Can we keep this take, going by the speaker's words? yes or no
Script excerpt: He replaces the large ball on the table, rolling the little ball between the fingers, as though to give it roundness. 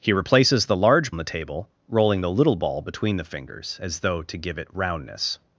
no